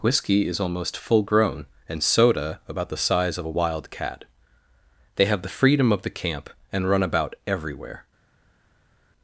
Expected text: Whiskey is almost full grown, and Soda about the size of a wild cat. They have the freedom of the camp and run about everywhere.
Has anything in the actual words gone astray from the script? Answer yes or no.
no